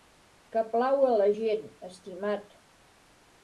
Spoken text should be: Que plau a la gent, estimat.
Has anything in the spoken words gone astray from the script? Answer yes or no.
no